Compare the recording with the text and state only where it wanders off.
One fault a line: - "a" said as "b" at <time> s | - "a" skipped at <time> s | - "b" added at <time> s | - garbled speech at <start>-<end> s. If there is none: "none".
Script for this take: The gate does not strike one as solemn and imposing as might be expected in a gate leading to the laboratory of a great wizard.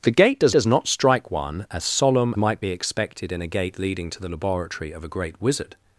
- "does" added at 0.5 s
- "and imposing as" skipped at 2.3 s